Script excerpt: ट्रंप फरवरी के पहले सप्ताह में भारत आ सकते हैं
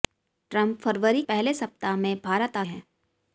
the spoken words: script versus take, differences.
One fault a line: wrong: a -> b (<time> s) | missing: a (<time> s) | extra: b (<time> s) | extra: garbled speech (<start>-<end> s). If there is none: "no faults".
missing: के (1.2 s)
missing: सकते (2.6 s)